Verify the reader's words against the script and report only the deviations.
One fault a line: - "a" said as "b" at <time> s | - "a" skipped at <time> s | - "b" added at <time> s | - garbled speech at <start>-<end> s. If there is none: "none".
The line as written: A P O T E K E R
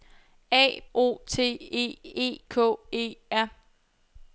- "P" skipped at 0.8 s
- "E" added at 2.0 s